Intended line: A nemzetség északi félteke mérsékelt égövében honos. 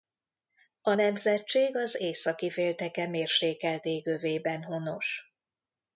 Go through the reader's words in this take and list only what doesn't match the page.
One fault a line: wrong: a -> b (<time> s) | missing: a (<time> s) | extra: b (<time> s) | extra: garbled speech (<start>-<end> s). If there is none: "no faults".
extra: az (1.8 s)